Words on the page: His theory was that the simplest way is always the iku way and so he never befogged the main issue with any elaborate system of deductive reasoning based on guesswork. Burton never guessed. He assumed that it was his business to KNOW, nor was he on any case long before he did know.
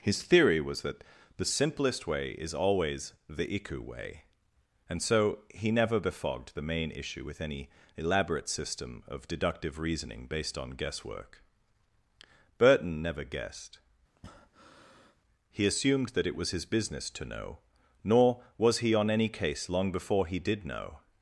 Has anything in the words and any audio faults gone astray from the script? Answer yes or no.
yes